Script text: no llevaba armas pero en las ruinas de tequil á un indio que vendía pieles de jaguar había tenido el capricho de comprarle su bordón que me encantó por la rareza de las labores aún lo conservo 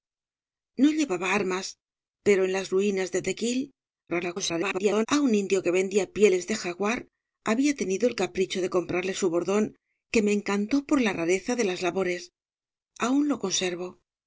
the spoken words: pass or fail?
fail